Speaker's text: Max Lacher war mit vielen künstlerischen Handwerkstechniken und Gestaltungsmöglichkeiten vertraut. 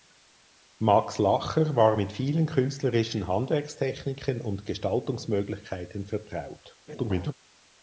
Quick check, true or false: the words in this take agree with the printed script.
false